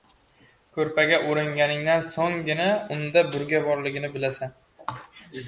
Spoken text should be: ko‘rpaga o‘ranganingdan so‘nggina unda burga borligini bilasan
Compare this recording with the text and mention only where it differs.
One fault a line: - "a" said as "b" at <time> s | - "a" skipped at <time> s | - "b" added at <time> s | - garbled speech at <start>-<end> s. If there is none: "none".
none